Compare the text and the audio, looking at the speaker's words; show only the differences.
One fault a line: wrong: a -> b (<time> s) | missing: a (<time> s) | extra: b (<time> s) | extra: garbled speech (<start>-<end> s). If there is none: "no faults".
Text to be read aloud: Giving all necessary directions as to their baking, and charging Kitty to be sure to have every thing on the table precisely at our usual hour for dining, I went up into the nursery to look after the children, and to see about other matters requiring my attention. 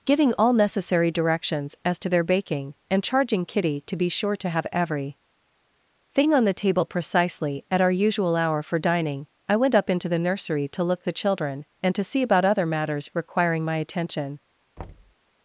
missing: after (11.0 s)